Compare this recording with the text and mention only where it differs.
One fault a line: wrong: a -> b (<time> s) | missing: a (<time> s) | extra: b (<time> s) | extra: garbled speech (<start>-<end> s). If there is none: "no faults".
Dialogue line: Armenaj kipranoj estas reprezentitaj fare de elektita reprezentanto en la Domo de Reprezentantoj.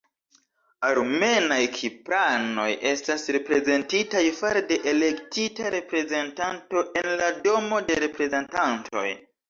no faults